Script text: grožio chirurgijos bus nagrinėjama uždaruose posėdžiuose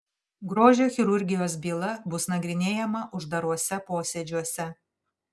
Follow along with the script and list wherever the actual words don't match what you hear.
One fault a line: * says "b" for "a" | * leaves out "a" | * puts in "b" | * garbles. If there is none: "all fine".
* puts in "byla"